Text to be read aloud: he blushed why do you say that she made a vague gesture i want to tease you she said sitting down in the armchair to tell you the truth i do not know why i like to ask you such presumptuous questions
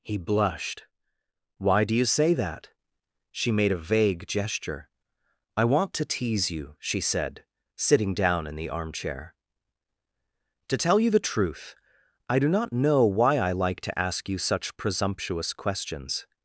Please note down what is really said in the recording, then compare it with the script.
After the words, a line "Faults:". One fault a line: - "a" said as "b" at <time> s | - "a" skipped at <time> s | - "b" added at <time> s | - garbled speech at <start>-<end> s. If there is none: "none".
he blushed why do you say that she made a vague gesture i want to tease you she said sitting down in the armchair to tell you the truth i do not know why i like to ask you such presumptuous questions
Faults:
none